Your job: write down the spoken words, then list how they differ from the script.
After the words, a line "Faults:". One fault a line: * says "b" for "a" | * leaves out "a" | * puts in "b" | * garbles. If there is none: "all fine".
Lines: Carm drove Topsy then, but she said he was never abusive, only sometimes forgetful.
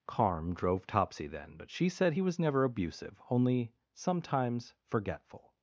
Carm drove Topsy then, but she said he was never abusive, only sometimes forgetful.
Faults:
all fine